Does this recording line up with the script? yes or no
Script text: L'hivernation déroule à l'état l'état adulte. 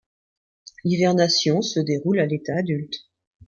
no